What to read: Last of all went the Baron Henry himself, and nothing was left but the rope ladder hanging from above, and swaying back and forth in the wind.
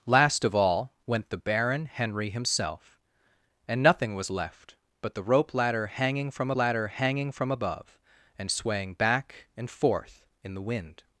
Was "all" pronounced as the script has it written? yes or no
yes